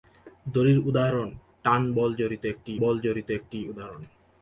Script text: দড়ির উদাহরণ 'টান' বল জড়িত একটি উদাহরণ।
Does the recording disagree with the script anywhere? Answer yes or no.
yes